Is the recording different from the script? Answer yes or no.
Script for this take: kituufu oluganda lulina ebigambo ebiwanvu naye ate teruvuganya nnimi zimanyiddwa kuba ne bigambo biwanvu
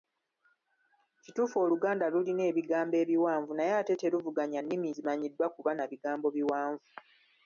yes